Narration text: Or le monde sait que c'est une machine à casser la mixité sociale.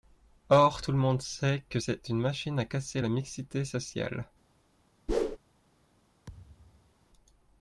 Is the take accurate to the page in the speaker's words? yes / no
no